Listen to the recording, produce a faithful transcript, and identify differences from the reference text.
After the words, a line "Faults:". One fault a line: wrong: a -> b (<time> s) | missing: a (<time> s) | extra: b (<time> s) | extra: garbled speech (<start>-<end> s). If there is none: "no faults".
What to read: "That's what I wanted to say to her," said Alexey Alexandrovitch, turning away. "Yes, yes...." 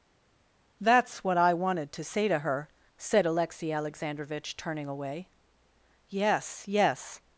"That's what I wanted to say to her," said Alexey Alexandrovitch, turning away. "Yes, yes...."
Faults:
no faults